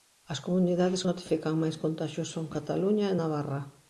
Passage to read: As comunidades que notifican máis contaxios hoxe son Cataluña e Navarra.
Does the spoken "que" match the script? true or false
false